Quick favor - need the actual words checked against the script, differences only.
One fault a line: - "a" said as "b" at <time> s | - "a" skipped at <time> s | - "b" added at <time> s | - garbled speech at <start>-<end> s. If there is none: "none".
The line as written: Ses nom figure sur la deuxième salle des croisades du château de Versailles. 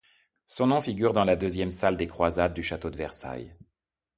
- "Ses" said as "Son" at 0.5 s
- "sur" said as "dans" at 1.1 s